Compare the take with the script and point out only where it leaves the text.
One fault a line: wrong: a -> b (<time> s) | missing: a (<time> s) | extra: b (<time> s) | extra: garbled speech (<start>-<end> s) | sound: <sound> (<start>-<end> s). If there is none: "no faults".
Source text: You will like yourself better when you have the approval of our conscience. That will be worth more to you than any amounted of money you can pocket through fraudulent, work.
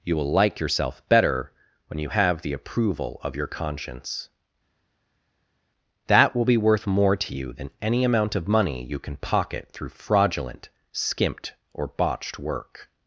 wrong: our -> your (3.4 s)
wrong: amounted -> amount (8.0 s)
extra: skimped or botched (10.9 s)